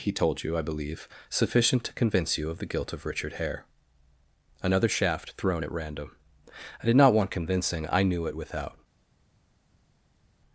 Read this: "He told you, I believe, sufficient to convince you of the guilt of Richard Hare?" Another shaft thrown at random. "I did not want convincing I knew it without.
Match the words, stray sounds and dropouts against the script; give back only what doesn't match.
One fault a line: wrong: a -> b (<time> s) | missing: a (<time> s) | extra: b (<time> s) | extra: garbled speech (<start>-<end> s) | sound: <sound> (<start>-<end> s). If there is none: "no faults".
no faults